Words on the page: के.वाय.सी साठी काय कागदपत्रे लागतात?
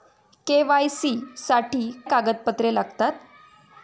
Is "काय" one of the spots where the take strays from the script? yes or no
yes